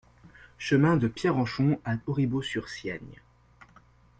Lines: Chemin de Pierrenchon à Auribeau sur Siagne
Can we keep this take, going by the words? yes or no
yes